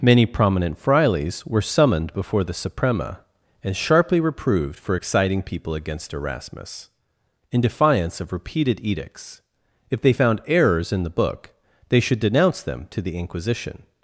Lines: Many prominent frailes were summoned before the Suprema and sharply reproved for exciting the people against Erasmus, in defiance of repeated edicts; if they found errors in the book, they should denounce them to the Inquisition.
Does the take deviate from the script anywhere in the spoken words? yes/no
yes